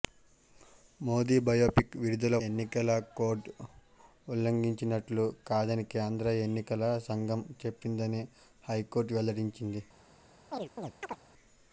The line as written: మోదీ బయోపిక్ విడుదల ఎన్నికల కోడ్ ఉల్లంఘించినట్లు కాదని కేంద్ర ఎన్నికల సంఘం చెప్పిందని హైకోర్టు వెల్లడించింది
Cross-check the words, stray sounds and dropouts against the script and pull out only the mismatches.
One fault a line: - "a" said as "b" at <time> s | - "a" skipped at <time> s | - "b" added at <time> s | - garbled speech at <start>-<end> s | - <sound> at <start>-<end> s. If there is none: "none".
- chirp at 10.5-11.2 s